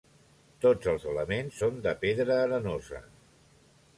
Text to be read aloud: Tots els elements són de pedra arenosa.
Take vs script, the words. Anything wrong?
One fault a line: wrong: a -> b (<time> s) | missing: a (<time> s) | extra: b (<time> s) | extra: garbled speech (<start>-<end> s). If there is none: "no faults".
no faults